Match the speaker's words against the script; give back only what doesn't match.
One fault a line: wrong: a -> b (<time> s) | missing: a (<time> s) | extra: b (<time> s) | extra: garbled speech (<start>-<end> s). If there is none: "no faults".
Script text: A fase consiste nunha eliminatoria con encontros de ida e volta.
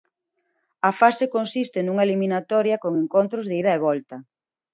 no faults